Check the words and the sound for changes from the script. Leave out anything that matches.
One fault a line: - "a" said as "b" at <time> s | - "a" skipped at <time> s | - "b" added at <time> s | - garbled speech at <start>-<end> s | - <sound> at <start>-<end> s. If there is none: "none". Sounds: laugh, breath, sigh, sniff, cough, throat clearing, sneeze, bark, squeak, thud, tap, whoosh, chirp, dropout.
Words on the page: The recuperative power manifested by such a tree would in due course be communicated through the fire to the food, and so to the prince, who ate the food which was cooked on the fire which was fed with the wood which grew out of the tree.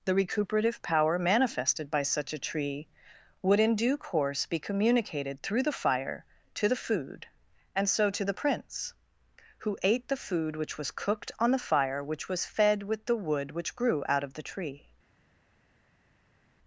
none